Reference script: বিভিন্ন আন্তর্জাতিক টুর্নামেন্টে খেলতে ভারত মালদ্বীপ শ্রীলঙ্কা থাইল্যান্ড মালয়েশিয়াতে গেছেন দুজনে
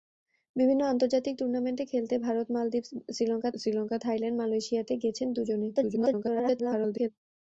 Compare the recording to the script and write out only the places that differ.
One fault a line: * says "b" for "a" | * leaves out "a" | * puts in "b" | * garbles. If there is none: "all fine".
* puts in "শ্রীলঙ্কা"
* garbles